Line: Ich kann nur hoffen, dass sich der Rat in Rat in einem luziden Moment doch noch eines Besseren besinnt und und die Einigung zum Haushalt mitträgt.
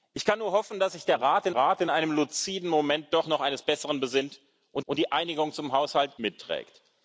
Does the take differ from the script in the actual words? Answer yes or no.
no